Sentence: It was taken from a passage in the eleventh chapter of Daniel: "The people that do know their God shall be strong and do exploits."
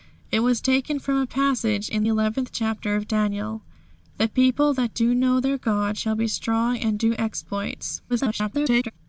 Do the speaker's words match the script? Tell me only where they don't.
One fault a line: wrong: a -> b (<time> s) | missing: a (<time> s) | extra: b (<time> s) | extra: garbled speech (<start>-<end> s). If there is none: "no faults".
missing: the (2.1 s)
extra: garbled speech (8.1-8.9 s)